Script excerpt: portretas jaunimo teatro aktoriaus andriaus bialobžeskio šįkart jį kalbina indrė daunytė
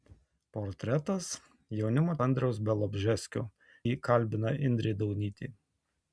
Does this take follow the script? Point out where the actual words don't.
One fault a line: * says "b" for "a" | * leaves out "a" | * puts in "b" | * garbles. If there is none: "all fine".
* leaves out "teatro aktoriaus"
* leaves out "šįkart"